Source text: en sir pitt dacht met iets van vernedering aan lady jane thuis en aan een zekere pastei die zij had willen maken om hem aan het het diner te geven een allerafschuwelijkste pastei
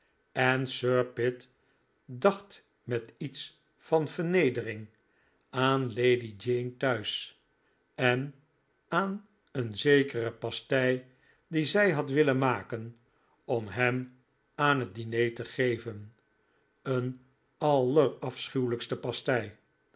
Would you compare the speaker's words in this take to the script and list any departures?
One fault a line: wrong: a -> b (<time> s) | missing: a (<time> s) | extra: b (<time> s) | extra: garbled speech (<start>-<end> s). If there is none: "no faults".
missing: het (14.9 s)